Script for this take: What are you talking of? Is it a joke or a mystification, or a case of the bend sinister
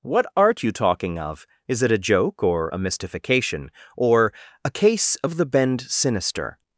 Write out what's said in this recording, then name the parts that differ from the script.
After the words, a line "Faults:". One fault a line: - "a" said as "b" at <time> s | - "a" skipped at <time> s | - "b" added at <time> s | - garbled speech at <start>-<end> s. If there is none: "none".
What art you talking of? Is it a joke or a mystification, or a case of the bend sinister
Faults:
- "are" said as "art" at 0.3 s